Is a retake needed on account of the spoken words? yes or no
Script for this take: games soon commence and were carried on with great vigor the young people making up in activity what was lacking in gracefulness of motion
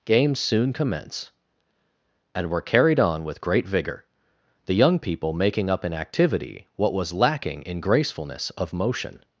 no